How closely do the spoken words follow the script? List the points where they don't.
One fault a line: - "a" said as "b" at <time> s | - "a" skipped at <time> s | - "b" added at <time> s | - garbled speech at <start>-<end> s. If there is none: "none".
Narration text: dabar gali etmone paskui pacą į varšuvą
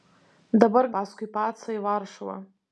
- "gali etmone" skipped at 0.9 s